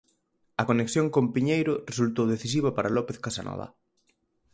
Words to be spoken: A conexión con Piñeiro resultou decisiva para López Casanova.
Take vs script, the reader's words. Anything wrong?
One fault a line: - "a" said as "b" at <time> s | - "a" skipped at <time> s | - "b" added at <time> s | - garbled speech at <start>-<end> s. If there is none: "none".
none